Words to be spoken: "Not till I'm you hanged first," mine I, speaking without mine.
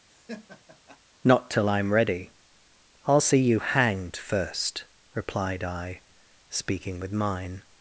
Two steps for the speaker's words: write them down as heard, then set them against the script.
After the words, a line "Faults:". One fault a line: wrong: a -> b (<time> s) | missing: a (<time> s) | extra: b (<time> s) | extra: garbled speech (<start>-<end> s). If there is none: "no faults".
"Not till I'm ready; I'll see you hanged first," replied I, speaking with mine.
Faults:
extra: ready I'll see (1.9 s)
wrong: mine -> replied (5.1 s)
wrong: without -> with (7.0 s)